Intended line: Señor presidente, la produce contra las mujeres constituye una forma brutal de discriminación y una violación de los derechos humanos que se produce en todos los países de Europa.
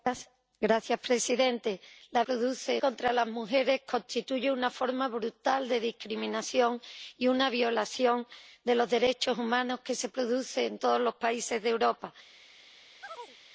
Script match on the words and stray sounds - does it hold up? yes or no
no